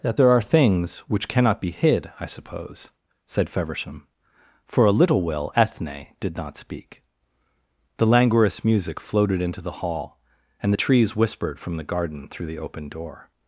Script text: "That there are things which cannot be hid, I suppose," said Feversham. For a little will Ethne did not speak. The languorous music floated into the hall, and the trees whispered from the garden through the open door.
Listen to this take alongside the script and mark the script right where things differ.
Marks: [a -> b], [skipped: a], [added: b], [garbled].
"That there are things which cannot be hid, I suppose," said Feversham. For a little will Ethne did not speak. The languorous music floated into the hall, and the trees whispered from the garden through the open door.